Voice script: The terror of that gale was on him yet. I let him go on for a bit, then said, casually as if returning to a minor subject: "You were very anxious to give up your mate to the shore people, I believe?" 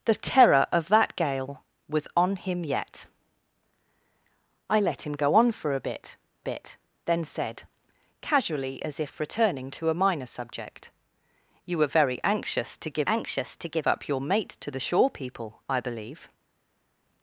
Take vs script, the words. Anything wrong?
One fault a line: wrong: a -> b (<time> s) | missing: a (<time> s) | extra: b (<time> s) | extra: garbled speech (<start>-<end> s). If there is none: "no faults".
extra: bit (6.4 s)
extra: anxious to give (13.1 s)